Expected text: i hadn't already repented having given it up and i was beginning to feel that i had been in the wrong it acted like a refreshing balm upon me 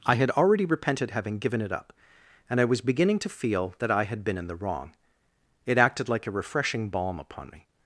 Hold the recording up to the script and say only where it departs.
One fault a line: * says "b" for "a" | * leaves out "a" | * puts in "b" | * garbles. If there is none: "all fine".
* says "had" for "hadn't"